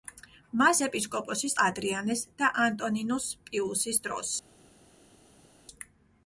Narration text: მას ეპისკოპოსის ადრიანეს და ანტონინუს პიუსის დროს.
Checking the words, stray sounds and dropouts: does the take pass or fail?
pass